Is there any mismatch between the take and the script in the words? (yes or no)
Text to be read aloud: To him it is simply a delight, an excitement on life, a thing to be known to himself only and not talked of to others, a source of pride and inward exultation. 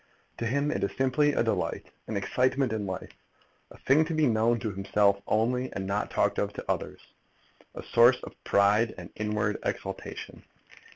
yes